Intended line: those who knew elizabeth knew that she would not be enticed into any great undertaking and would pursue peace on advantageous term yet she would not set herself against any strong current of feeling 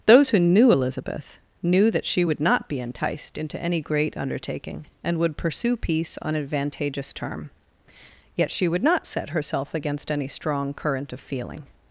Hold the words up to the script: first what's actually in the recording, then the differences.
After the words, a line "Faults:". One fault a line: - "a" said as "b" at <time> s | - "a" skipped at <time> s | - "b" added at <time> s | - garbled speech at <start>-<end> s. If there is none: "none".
those who knew elizabeth knew that she would not be enticed into any great undertaking and would pursue peace on advantageous term yet she would not set herself against any strong current of feeling
Faults:
none